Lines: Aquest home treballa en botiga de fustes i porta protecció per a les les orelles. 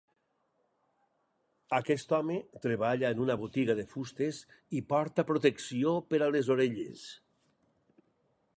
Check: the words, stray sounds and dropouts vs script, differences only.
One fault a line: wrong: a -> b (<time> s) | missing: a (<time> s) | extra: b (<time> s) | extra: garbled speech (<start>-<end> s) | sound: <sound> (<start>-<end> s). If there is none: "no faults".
extra: una (3.2 s)
missing: les (6.5 s)